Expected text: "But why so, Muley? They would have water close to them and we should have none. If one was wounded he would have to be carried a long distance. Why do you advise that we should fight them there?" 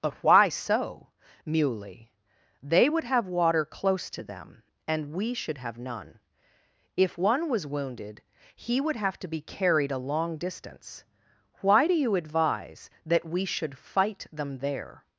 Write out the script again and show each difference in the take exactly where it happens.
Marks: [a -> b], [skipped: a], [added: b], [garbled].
"But why so, Muley? They would have water close to them and we should have none. If one was wounded he would have to be carried a long distance. Why do you advise that we should fight them there?"